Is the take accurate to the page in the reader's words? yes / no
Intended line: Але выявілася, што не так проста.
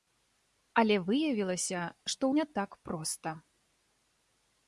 yes